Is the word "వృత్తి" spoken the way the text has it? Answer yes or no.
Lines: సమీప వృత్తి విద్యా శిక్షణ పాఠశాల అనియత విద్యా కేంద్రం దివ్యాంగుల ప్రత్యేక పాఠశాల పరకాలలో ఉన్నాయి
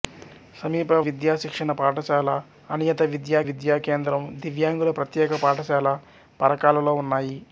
no